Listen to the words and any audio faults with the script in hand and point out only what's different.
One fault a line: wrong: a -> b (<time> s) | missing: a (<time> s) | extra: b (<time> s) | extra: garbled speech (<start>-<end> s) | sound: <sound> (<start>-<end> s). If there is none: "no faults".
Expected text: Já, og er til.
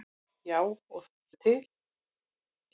no faults